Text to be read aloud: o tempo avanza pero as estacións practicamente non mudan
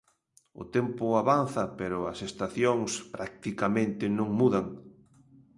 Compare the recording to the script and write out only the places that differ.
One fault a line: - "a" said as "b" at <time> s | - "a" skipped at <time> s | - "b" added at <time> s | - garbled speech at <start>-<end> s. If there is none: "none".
none